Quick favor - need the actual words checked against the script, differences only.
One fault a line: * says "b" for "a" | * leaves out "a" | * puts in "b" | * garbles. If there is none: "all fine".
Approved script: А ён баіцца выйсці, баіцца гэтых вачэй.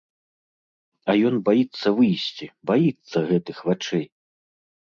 all fine